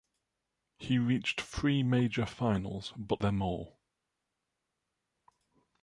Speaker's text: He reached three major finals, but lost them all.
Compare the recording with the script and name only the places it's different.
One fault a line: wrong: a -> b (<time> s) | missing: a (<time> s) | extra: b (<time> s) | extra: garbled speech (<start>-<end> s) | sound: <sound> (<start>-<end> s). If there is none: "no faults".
missing: lost (3.2 s)